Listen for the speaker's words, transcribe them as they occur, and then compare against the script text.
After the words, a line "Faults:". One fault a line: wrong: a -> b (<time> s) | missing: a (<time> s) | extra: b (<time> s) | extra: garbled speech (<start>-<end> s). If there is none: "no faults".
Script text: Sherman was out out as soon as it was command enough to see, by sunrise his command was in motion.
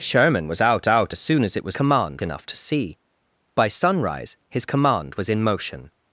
Sherman was out out as soon as it was command enough to see, by sunrise his command was in motion.
Faults:
no faults